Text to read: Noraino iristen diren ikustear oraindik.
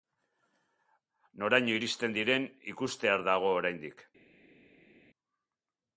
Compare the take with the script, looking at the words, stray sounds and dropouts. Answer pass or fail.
fail